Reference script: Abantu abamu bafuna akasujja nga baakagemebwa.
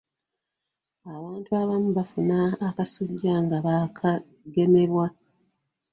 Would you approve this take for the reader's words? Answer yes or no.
yes